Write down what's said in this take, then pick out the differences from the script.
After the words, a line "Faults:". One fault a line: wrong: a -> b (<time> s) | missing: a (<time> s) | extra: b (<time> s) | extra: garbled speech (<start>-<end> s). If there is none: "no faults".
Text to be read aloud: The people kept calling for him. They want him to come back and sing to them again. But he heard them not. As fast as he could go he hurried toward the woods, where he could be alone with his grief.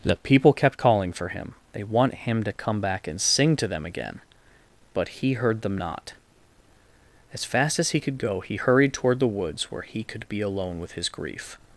The people kept calling for him. They want him to come back and sing to them again. But he heard them not. As fast as he could go he hurried toward the woods, where he could be alone with his grief.
Faults:
no faults